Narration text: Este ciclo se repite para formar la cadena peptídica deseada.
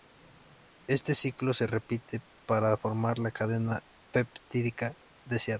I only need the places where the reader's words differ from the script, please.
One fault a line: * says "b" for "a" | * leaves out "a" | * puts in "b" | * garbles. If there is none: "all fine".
all fine